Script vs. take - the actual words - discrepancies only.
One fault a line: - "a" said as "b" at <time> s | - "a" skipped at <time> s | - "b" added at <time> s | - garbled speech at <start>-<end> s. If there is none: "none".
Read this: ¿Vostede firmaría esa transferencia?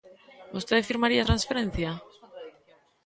- "esa" skipped at 1.2 s